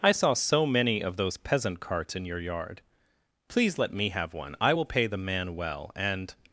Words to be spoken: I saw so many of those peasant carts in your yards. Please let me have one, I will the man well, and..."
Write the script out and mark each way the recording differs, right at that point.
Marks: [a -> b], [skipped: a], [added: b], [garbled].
I saw so many of those peasant carts in your [yards. -> yard] Please let me have one, I will [added: pay] the man well, and..."